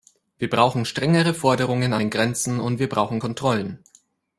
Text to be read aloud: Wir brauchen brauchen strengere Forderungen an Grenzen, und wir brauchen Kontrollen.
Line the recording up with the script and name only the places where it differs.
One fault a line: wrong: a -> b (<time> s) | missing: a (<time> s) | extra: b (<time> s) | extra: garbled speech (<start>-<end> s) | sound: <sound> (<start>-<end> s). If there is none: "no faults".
missing: brauchen (0.8 s)
extra: den (2.0 s)